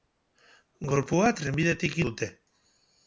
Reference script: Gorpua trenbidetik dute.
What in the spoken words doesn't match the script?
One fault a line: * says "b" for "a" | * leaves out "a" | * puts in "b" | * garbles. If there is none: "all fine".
all fine